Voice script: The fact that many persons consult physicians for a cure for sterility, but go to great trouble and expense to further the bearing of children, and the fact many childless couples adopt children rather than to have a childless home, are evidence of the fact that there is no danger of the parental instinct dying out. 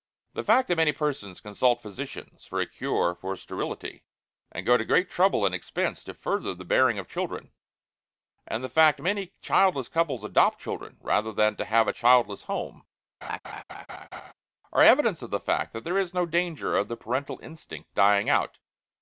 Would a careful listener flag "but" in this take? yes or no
yes